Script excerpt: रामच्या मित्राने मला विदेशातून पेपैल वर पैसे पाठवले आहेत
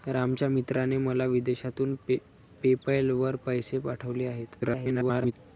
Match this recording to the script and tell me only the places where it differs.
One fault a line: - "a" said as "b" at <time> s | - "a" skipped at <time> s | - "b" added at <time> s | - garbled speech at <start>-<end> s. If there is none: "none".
- garbled speech at 4.6-5.3 s